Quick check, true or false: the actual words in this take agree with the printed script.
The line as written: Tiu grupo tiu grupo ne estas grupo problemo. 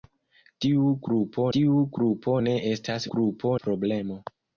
true